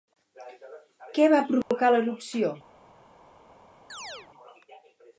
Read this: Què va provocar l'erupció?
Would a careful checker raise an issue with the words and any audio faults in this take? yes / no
yes